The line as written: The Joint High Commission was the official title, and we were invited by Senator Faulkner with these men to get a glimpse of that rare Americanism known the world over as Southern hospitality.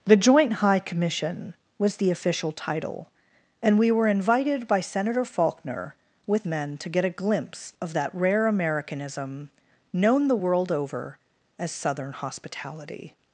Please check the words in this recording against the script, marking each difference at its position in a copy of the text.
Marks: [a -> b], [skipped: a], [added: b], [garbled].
The Joint High Commission was the official title, and we were invited by Senator Faulkner with [skipped: these] men to get a glimpse of that rare Americanism known the world over as Southern hospitality.